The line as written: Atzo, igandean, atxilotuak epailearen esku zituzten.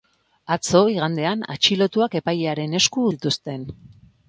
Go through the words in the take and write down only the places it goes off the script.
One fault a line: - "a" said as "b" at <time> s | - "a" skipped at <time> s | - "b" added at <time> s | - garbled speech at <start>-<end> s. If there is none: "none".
none